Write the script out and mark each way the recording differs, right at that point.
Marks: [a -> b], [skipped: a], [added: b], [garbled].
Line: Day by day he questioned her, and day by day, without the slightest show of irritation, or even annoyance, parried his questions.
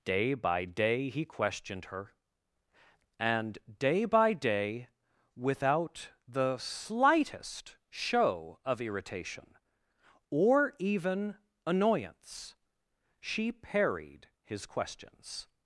Day by day he questioned her, and day by day, without the slightest show of irritation, or even annoyance, [added: she] parried his questions.